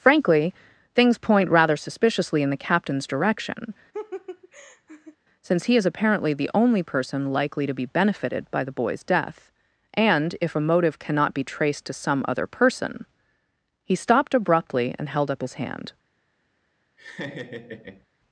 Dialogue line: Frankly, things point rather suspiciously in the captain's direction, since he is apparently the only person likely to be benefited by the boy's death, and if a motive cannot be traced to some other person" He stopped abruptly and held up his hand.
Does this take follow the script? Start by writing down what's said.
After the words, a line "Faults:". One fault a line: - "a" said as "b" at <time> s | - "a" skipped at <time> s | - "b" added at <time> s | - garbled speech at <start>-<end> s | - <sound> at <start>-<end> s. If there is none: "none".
Frankly, things point rather suspiciously in the captain's direction, since he is apparently the only person likely to be benefited by the boy's death, and if a motive cannot be traced to some other person" He stopped abruptly and held up his hand.
Faults:
- laugh at 3.9-5.2 s
- laugh at 17.0-18.1 s